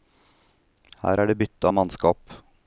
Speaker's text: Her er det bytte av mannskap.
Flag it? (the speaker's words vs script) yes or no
no